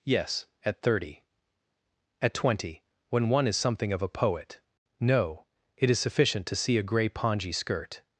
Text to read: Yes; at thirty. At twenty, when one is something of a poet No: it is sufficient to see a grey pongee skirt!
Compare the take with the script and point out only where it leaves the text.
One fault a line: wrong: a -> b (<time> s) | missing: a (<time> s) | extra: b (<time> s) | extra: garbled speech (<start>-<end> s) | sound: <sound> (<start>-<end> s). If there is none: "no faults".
no faults